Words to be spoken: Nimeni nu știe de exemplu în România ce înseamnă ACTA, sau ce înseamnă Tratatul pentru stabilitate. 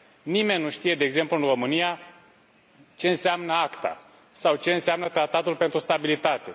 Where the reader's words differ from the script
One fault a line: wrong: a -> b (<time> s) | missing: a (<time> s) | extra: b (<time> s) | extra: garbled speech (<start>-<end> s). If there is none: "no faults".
no faults